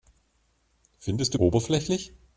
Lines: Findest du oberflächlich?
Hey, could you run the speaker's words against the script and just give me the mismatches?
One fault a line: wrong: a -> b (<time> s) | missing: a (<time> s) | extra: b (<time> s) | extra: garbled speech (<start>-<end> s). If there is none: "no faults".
no faults